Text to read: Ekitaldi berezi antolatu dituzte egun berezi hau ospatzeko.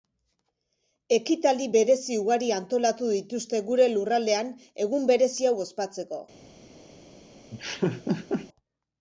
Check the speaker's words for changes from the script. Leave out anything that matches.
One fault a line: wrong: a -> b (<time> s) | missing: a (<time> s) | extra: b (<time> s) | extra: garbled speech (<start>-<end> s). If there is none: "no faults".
extra: ugari (2.2 s)
extra: gure lurraldean (3.7 s)